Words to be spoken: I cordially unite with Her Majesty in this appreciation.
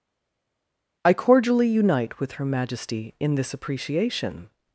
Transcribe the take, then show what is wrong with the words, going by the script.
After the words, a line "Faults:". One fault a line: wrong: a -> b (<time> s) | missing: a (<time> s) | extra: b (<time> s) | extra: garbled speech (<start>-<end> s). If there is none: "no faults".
I cordially unite with Her Majesty in this appreciation.
Faults:
no faults